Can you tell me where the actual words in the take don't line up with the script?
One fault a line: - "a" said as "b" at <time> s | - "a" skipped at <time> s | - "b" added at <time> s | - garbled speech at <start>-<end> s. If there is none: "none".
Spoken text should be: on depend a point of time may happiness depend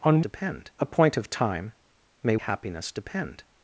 none